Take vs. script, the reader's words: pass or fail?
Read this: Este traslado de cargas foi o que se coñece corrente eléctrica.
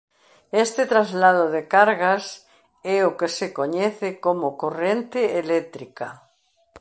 fail